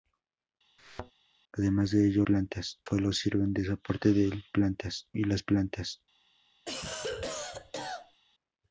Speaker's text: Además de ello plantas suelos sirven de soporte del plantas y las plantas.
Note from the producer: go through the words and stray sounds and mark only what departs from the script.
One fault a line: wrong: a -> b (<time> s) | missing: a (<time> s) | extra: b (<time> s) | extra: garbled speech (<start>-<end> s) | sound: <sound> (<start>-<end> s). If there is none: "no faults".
sound: thud (0.8-1.1 s)
sound: cough (6.7-8.2 s)